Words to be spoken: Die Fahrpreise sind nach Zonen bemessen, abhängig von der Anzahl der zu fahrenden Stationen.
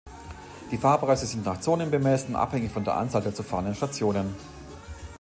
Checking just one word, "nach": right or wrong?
right